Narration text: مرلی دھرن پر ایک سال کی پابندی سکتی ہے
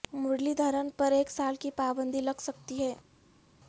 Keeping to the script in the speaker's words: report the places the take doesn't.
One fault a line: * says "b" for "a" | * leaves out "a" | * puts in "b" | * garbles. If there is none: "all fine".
* puts in "لگ"